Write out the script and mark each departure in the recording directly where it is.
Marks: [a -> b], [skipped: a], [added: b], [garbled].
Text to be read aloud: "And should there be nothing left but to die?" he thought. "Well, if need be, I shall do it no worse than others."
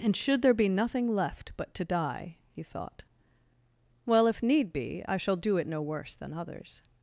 "And should there be nothing left but to die?" he thought. "Well, if need be, I shall do it no worse than others."